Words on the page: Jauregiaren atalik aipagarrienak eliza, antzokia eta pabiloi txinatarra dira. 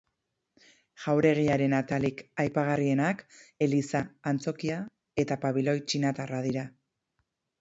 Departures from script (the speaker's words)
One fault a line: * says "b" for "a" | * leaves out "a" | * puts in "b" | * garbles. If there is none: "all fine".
all fine